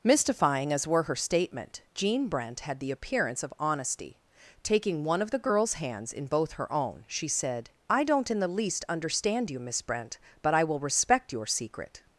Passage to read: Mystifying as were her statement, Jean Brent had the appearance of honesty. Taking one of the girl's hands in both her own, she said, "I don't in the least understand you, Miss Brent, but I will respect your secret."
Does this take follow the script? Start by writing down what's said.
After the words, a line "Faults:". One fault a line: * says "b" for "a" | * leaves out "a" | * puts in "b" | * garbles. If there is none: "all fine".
Mystifying as were her statement, Jean Brent had the appearance of honesty. Taking one of the girl's hands in both her own, she said, "I don't in the least understand you, Miss Brent, but I will respect your secret."
Faults:
all fine